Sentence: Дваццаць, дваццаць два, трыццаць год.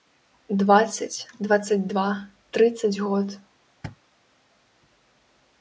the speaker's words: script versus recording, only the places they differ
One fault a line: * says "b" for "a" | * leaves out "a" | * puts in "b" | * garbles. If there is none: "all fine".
all fine